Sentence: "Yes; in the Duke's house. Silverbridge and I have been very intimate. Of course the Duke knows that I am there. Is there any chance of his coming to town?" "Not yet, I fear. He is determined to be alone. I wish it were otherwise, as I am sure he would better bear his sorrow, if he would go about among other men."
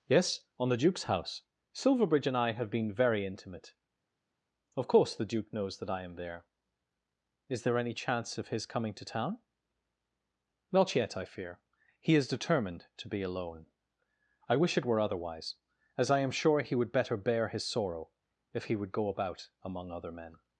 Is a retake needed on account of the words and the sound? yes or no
yes